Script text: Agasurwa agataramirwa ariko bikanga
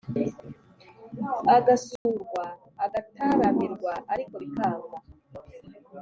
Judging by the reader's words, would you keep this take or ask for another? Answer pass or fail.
pass